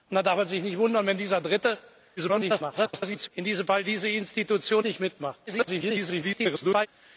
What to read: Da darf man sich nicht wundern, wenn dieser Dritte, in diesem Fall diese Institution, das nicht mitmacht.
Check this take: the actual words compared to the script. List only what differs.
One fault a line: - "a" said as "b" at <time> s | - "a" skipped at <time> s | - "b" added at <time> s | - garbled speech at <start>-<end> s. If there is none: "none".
- garbled speech at 2.2-3.3 s
- "das" skipped at 4.8 s
- garbled speech at 5.5-6.9 s